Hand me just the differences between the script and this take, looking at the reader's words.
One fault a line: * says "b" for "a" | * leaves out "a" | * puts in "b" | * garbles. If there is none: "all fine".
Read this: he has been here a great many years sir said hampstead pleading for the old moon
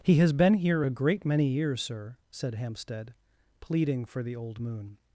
all fine